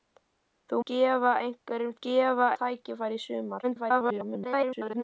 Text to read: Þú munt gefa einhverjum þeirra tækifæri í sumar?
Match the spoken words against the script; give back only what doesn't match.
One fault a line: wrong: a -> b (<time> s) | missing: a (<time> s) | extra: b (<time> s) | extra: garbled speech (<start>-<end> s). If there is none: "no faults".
missing: munt (0.8 s)
wrong: þeirra -> gefa (2.1 s)
extra: garbled speech (3.6-5.0 s)